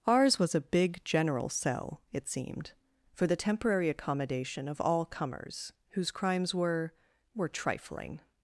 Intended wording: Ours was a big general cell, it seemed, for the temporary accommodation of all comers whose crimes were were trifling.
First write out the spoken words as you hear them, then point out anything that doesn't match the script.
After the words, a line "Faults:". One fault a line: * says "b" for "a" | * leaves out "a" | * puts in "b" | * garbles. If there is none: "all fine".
Ours was a big general cell, it seemed, for the temporary accommodation of all comers whose crimes were were trifling.
Faults:
all fine